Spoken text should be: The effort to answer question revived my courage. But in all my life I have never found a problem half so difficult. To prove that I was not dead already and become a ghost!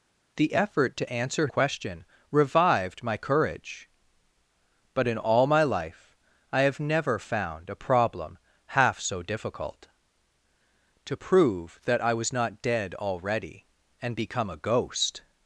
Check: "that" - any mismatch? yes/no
no